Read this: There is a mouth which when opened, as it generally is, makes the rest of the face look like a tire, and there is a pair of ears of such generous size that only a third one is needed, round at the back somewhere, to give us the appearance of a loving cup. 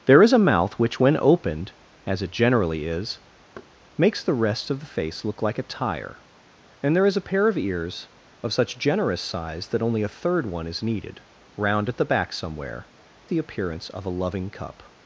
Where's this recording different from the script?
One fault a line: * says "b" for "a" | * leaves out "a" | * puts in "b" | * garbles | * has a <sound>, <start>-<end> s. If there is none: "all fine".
* has a thud, 3.6-3.7 s
* leaves out "to give us"